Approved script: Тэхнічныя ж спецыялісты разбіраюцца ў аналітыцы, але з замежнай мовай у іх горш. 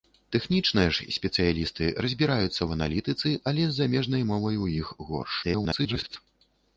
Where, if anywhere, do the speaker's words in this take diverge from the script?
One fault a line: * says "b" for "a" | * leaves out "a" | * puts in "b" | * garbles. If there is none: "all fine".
* garbles